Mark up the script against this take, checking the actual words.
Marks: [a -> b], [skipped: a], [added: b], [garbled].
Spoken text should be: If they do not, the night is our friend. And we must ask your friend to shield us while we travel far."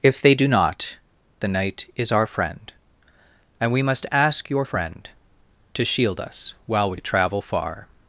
If they do not, the night is our friend. And we must ask your friend to shield us while we travel far."